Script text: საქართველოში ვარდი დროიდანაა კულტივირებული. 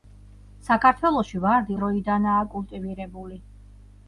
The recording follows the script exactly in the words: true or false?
true